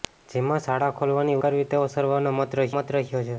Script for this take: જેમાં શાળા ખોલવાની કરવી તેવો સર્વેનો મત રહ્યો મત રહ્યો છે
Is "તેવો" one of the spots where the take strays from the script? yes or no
no